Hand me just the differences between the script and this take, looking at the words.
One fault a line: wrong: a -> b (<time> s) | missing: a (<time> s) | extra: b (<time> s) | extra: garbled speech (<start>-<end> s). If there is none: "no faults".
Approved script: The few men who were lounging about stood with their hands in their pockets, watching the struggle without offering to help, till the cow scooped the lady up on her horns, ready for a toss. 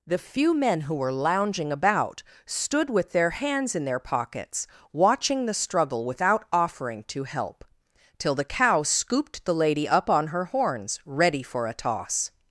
no faults